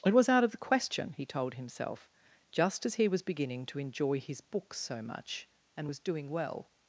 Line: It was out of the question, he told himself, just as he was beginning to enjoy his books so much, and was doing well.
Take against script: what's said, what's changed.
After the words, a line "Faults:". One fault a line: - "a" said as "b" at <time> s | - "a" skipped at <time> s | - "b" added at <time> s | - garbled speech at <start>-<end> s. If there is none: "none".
It was out of the question, he told himself, just as he was beginning to enjoy his books so much, and was doing well.
Faults:
none